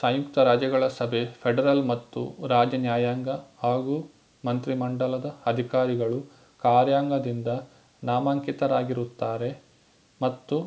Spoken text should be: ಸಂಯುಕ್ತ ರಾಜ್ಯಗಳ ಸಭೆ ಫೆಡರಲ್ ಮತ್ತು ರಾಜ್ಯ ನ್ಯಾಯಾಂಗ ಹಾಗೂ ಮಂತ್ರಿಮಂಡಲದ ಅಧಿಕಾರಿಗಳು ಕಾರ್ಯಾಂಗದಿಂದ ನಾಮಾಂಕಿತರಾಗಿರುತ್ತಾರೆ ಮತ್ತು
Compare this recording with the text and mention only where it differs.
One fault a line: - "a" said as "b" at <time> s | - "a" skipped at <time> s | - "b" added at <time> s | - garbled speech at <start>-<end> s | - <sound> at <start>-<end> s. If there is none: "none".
none